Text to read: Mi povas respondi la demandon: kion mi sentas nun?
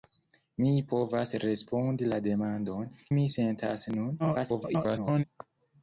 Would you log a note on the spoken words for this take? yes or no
yes